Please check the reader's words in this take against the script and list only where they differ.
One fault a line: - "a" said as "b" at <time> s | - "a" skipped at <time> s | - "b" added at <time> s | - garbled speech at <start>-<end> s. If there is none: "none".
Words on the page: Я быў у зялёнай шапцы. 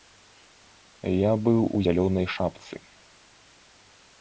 none